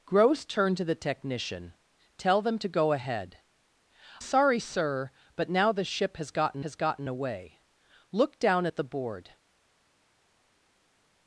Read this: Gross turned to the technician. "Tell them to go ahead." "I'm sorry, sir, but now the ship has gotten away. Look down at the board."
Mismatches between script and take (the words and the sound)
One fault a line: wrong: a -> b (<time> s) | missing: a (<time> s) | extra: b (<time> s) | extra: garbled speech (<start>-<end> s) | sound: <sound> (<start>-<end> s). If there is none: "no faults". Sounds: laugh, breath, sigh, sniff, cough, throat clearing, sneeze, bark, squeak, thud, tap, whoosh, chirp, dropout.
missing: I'm (3.4 s)
extra: has gotten (6.6 s)